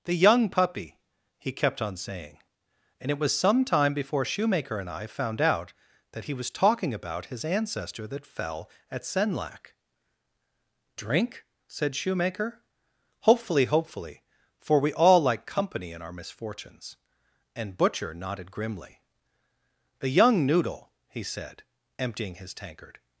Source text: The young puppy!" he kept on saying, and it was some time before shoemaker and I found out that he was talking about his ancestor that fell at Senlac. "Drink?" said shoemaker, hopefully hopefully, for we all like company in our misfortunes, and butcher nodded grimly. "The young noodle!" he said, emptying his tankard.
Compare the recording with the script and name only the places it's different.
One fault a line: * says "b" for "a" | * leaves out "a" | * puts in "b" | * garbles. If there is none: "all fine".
all fine